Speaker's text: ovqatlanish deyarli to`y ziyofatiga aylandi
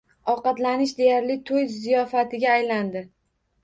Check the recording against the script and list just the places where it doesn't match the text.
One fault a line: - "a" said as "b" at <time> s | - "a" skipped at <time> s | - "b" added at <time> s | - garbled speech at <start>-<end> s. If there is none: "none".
none